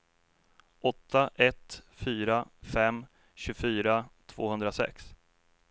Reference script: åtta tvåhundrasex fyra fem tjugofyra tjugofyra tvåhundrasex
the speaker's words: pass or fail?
fail